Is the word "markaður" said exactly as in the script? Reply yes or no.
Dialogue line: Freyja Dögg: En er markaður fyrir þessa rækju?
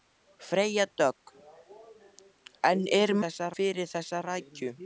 no